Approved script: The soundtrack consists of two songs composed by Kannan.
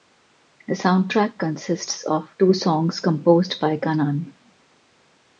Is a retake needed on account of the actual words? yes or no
no